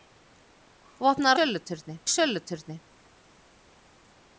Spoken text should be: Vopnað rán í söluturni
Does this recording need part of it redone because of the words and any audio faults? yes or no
yes